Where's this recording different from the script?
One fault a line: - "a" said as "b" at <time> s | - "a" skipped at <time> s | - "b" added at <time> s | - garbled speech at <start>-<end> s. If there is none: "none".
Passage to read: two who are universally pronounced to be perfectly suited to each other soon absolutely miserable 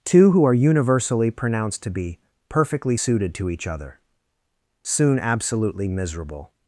none